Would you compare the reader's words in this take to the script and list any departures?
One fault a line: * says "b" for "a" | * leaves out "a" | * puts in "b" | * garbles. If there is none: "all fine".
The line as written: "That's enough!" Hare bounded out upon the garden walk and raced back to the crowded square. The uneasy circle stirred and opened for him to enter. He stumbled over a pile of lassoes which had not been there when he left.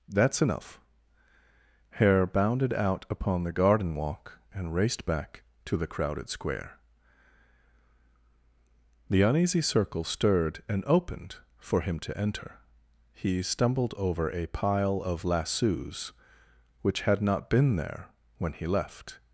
all fine